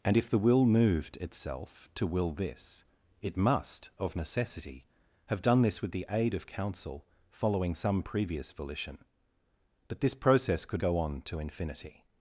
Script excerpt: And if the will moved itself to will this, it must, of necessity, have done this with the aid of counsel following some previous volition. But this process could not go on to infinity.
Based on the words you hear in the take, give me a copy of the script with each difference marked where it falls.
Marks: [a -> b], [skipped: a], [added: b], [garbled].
And if the will moved itself to will this, it must, of necessity, have done this with the aid of counsel following some previous volition. But this process could [skipped: not] go on to infinity.